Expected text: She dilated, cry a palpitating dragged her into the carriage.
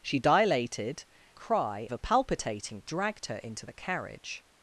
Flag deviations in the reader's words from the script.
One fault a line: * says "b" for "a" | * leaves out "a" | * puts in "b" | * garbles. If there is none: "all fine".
all fine